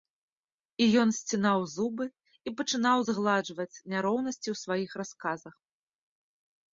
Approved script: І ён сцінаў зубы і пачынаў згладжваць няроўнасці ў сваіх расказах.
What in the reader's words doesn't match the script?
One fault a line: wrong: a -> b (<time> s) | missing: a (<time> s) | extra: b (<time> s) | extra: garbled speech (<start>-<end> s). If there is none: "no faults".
no faults